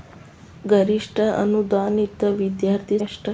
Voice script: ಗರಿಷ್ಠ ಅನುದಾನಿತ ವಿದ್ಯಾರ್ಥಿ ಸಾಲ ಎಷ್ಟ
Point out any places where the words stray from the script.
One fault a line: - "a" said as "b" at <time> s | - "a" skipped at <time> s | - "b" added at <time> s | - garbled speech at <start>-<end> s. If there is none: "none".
- "ಸಾಲ" skipped at 3.0 s